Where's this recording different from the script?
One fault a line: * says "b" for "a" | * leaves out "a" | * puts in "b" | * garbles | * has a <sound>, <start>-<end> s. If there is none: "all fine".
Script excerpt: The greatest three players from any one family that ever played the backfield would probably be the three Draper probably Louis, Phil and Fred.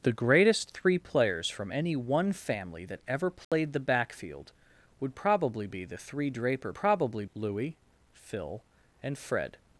* has a dropout, 3.4-3.5 s